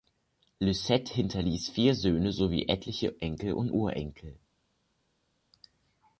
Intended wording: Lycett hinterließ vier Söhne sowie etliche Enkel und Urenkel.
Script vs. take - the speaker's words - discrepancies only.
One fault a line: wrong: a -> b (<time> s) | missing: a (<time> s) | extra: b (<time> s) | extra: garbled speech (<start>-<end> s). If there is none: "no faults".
no faults